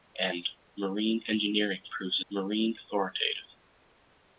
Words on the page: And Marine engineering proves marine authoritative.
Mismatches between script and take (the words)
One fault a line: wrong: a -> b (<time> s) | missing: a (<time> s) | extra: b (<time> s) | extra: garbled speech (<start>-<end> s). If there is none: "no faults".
no faults